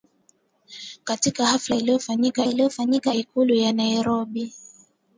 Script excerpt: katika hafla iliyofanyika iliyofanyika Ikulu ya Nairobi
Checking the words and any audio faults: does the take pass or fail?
pass